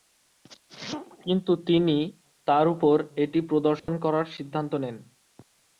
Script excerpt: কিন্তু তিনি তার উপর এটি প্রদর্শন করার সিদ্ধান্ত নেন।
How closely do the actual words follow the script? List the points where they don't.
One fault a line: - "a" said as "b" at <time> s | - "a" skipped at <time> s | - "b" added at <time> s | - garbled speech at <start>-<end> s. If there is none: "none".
none